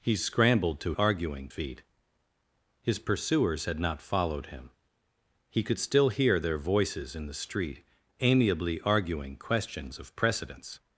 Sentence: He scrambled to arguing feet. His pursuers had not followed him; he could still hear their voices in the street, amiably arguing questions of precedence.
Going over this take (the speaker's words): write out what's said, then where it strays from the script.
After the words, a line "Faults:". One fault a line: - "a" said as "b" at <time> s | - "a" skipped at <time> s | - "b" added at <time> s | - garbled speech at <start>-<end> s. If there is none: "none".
He scrambled to arguing feet. His pursuers had not followed him; he could still hear their voices in the street, amiably arguing questions of precedence.
Faults:
none